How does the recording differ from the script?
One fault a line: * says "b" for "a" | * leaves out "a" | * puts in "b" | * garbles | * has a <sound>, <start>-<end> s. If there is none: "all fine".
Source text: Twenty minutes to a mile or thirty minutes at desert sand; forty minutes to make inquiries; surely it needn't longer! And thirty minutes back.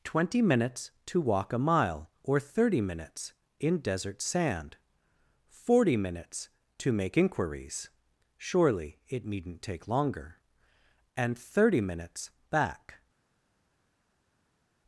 * puts in "walk"
* says "in" for "at"
* puts in "take"